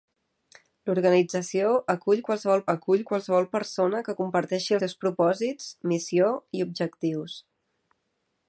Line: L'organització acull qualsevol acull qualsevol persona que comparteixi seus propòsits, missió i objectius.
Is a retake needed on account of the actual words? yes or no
no